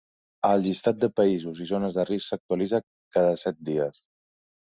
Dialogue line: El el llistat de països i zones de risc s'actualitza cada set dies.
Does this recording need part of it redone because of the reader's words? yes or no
yes